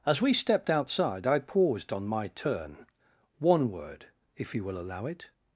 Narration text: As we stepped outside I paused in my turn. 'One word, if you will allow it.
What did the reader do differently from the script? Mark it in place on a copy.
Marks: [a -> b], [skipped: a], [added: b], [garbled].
As we stepped outside I paused [in -> on] my turn. 'One word, if you will allow it.